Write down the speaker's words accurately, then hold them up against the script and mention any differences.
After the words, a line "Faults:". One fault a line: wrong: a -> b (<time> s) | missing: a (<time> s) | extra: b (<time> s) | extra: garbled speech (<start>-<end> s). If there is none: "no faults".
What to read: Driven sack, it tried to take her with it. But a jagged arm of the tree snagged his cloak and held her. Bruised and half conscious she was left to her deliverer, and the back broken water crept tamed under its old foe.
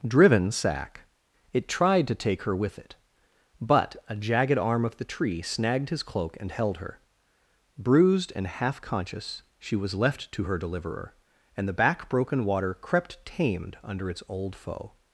Driven sack, it tried to take her with it. But a jagged arm of the tree snagged his cloak and held her. Bruised and half conscious she was left to her deliverer, and the back broken water crept tamed under its old foe.
Faults:
no faults